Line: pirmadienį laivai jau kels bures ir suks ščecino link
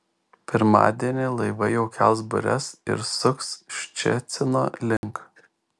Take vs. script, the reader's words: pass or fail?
pass